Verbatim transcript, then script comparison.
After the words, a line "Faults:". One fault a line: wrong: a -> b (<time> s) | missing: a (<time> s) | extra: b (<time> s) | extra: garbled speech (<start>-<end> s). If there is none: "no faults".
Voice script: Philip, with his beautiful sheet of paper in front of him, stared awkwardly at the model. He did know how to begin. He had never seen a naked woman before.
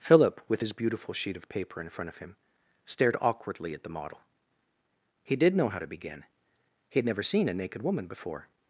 Philip, with his beautiful sheet of paper in front of him, stared awkwardly at the model. He did know how to begin. He had never seen a naked woman before.
Faults:
no faults